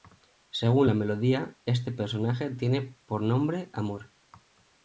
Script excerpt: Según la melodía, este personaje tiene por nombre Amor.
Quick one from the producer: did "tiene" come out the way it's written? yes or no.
yes